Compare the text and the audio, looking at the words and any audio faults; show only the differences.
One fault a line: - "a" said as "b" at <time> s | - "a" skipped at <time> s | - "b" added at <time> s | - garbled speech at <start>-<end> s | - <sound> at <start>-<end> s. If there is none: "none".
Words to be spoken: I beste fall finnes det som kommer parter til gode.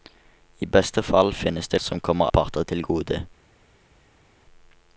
none